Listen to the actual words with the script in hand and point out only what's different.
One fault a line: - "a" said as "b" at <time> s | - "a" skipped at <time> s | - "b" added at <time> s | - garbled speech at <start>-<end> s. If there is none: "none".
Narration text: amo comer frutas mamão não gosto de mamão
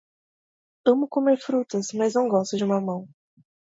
- "mamão" said as "mas" at 1.9 s